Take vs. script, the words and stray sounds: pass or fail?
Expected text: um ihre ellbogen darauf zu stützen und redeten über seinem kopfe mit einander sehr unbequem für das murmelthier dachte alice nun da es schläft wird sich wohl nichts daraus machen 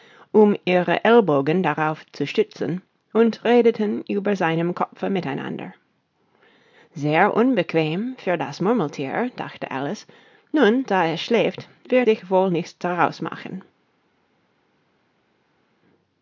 pass